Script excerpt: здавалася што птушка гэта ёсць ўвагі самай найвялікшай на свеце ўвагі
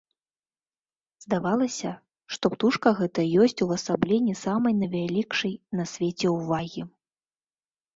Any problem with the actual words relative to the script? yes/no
yes